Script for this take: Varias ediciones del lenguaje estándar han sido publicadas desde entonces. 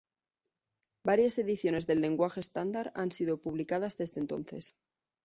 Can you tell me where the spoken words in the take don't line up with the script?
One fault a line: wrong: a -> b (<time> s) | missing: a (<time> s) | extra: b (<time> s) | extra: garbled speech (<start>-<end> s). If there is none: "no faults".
no faults